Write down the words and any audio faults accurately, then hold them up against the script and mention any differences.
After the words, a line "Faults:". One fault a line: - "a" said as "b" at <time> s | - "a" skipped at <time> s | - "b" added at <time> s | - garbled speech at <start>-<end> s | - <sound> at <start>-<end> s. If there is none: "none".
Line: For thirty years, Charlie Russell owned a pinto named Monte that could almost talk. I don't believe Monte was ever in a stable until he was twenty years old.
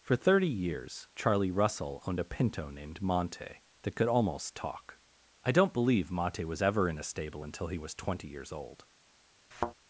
For thirty years, Charlie Russell owned a pinto named Monte that could almost talk. I don't believe Monte was ever in a stable until he was twenty years old.
Faults:
- thud at 9.5-9.7 s